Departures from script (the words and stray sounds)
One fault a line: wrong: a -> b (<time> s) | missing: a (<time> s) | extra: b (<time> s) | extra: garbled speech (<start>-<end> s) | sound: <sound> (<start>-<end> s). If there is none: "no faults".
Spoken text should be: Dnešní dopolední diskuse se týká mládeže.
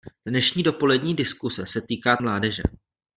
no faults